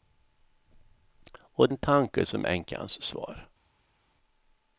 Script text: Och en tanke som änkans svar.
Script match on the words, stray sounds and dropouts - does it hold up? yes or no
yes